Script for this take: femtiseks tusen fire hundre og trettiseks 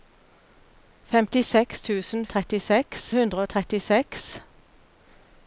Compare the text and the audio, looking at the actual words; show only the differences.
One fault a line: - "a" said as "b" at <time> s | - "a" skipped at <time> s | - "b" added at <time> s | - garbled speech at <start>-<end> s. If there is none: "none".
- "fire" said as "trettiseks" at 2.3 s